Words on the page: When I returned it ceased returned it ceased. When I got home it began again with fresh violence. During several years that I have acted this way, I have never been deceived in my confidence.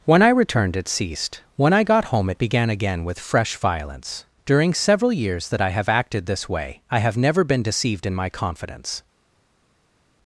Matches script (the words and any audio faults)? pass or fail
fail